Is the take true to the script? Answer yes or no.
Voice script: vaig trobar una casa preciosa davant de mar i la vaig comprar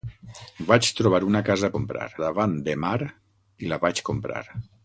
no